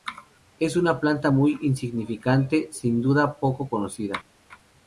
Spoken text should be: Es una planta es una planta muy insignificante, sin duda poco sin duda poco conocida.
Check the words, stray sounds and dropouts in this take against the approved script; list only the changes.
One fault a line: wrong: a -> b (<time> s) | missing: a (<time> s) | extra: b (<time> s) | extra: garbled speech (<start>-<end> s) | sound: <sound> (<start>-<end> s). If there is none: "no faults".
missing: es una planta (1.3 s)
missing: sin duda poco (3.7 s)